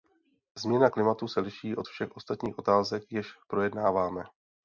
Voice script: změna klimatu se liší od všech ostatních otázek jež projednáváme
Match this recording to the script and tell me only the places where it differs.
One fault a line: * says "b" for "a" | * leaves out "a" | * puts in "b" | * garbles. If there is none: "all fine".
all fine